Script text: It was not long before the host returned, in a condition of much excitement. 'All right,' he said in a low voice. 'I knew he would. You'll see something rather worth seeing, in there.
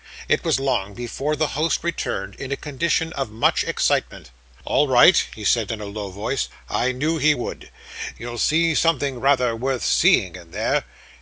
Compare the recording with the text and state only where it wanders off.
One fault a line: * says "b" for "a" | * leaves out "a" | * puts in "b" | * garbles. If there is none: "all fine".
* leaves out "not"